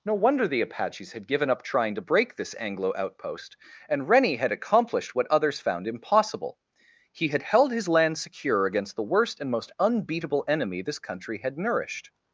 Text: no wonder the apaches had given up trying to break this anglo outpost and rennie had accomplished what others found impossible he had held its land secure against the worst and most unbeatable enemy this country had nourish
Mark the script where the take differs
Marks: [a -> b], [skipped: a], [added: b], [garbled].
no wonder the apaches had given up trying to break this anglo outpost and rennie had accomplished what others found impossible he had held [its -> his] land secure against the worst and most unbeatable enemy this country had [nourish -> nourished]